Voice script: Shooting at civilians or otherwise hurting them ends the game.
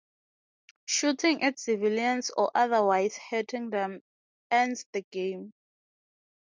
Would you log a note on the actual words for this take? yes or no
no